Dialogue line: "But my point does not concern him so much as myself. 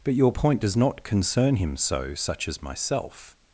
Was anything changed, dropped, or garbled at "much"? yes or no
yes